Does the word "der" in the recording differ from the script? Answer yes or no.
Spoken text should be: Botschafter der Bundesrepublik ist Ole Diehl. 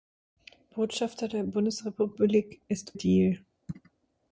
no